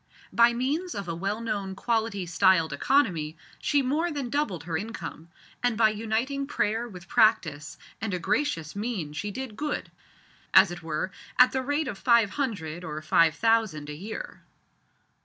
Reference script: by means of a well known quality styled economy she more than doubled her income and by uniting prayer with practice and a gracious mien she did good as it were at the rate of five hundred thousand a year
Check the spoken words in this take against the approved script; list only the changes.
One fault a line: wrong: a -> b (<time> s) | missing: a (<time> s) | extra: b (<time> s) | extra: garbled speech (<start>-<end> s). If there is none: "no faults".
extra: or five (12.8 s)